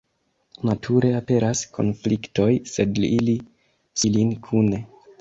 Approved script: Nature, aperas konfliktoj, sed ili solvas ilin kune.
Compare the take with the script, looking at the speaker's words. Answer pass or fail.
fail